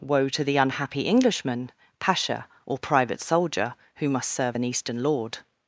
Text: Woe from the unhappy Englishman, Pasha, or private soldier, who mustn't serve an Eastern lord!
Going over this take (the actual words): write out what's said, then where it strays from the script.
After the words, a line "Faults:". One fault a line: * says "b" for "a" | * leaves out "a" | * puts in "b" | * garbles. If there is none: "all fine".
Woe to the unhappy Englishman, Pasha, or private soldier, who must serve an Eastern lord!
Faults:
* says "to" for "from"
* says "must" for "mustn't"